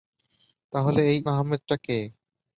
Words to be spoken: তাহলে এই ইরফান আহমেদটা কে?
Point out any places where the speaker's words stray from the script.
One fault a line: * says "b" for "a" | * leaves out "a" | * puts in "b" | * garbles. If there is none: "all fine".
* leaves out "ইরফান"